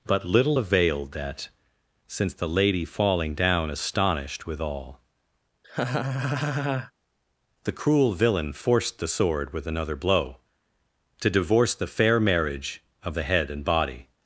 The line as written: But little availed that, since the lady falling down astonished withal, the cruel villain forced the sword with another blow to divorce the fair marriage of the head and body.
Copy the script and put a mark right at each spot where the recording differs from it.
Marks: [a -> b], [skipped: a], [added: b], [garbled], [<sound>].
But little availed that, since the lady falling down astonished withal, [laugh] the cruel villain forced the sword with another blow to divorce the fair marriage of the head and body.